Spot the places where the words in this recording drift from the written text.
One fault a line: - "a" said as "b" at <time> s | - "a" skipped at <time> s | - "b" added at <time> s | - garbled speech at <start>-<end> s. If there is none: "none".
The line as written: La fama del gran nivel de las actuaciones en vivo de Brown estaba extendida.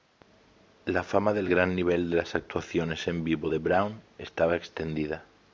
none